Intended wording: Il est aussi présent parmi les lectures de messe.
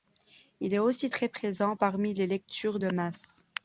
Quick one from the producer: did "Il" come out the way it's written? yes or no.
yes